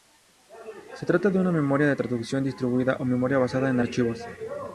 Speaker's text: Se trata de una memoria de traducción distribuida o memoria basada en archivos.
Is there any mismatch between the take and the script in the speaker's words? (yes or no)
no